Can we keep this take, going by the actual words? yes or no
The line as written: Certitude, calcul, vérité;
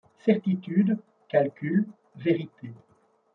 yes